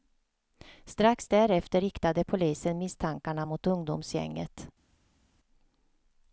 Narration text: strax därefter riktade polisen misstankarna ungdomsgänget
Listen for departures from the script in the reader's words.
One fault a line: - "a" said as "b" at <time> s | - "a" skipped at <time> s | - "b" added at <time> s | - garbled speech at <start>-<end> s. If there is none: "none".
- "mot" added at 3.4 s